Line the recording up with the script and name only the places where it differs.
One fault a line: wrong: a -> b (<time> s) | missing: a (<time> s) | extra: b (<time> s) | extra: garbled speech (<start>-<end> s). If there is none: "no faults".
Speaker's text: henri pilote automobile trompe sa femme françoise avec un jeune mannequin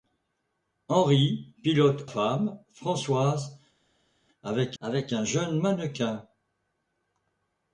missing: automobile trompe sa (2.1 s)
extra: avec (4.8 s)